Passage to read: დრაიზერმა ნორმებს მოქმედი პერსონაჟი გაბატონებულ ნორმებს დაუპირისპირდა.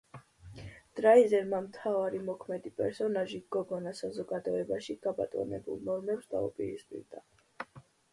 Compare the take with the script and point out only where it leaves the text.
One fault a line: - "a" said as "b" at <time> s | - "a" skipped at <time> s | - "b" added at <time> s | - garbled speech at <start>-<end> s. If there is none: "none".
- "ნორმებს" said as "მთავარი" at 1.6 s
- "გოგონა საზოგადოებაში" added at 3.5 s